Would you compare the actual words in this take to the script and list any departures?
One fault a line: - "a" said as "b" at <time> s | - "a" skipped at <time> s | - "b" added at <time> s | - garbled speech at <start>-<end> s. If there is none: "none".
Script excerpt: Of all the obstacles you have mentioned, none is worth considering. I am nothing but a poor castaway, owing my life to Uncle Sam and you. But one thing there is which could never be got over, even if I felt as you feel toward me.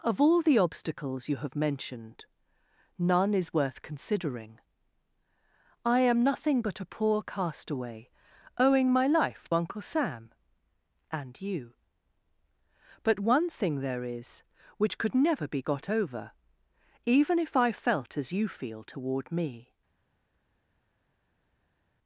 - "to" skipped at 9.5 s